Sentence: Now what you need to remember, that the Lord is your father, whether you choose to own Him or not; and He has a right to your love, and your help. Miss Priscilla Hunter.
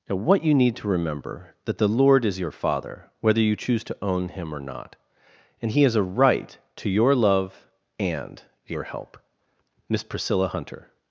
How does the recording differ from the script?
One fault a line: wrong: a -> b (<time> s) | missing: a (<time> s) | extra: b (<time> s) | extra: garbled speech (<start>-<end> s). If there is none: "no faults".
no faults